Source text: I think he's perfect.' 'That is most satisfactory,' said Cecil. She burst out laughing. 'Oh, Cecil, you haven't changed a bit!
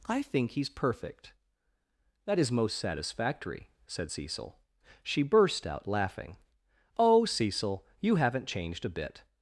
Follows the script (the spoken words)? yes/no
yes